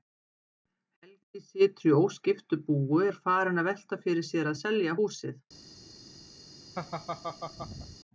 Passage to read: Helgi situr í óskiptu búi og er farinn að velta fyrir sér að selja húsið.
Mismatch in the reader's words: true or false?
false